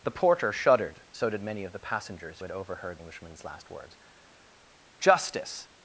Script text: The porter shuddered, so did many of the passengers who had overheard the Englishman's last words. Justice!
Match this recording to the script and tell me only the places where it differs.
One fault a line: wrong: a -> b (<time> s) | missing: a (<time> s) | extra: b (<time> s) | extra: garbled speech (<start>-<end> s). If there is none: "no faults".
missing: who (2.4 s)
missing: the (3.0 s)